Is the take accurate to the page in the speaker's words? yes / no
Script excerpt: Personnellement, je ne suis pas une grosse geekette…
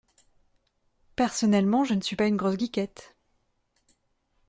yes